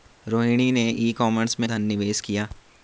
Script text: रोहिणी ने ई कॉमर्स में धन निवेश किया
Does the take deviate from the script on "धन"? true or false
false